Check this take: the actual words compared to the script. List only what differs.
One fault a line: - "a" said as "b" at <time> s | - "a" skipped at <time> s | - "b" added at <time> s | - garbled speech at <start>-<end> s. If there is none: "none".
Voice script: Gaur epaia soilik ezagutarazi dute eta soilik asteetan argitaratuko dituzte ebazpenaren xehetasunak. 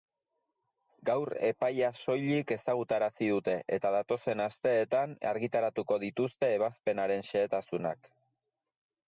- "soilik" said as "datozen" at 4.0 s